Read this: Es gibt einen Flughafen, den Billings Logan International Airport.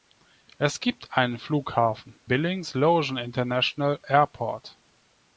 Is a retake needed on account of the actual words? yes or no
yes